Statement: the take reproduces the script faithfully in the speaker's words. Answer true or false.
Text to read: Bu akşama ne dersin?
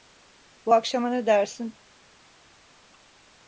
true